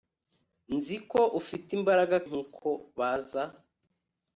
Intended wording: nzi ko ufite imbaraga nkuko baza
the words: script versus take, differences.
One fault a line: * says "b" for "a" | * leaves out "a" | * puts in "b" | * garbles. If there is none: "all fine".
all fine